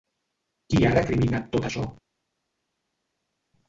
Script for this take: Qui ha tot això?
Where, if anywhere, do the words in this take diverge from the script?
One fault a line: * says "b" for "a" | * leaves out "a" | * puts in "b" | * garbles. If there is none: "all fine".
* puts in "recriminat"